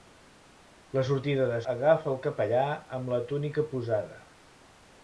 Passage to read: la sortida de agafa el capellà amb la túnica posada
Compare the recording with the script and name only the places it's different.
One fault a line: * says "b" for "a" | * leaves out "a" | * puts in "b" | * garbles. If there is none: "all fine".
all fine